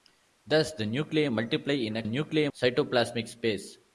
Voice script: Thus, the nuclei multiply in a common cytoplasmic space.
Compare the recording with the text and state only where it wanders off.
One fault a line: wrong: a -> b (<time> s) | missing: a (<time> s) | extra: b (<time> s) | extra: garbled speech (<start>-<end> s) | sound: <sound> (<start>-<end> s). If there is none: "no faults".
wrong: common -> nuclei (2.0 s)